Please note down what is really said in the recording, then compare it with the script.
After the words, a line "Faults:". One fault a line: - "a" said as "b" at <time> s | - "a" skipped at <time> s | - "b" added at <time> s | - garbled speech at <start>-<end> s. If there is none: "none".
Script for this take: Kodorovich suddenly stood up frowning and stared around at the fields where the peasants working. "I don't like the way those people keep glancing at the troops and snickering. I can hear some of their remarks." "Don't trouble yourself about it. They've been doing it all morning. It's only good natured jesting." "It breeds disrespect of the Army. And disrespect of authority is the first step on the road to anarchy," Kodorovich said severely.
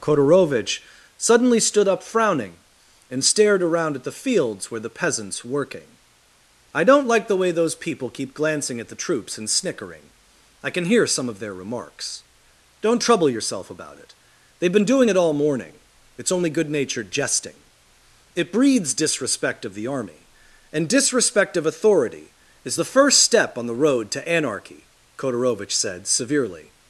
Kodorovich suddenly stood up frowning and stared around at the fields where the peasants working. "I don't like the way those people keep glancing at the troops and snickering. I can hear some of their remarks." "Don't trouble yourself about it. They've been doing it all morning. It's only good natured jesting." "It breeds disrespect of the Army. And disrespect of authority is the first step on the road to anarchy," Kodorovich said severely.
Faults:
none